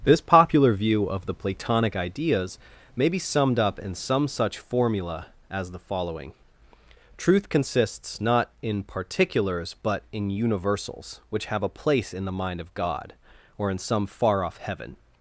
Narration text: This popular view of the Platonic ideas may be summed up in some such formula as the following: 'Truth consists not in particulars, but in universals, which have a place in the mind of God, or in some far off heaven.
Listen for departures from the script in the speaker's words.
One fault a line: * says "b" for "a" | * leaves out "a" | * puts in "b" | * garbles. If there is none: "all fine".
all fine